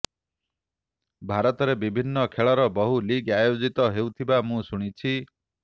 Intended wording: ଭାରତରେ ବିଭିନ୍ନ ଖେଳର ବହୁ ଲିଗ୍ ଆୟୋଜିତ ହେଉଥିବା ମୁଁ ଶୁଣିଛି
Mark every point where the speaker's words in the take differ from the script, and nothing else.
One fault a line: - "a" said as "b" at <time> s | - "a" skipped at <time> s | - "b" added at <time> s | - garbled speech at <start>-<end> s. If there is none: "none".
none